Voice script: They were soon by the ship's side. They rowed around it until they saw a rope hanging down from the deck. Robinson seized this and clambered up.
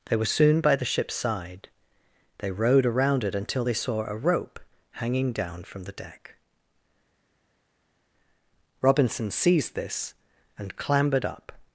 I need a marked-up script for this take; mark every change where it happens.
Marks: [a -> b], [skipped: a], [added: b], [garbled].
They were soon by the ship's side. They rowed around it until they saw a rope hanging down from the deck. Robinson seized this and clambered up.